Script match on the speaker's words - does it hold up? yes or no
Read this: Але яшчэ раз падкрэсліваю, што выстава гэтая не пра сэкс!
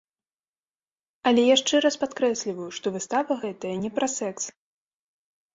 yes